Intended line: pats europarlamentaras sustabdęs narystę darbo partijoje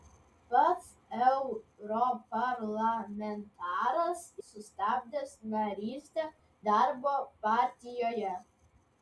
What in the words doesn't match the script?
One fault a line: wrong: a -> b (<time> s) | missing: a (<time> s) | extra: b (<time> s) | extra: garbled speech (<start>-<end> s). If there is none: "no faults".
no faults